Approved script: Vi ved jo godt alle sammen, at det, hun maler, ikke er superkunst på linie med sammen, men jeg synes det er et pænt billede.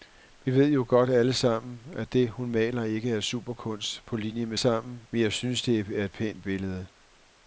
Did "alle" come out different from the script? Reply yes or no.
no